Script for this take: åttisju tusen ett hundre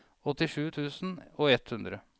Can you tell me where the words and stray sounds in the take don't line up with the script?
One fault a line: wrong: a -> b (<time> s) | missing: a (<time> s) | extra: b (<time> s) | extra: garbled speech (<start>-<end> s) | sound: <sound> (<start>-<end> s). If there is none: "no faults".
extra: og (1.4 s)